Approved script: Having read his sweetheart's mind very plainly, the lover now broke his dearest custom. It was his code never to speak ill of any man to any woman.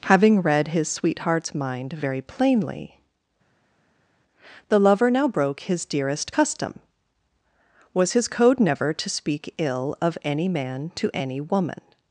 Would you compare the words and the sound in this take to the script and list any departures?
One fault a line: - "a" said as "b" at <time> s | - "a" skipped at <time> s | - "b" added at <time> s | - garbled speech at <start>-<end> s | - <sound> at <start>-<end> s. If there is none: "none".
- "It" skipped at 6.8 s